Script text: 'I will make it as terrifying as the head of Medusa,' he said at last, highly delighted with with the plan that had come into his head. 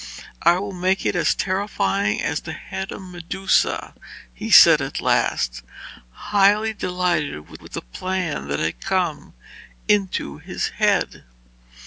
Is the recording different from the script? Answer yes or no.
no